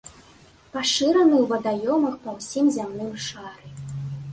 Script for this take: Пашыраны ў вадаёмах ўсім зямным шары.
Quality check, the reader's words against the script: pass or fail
fail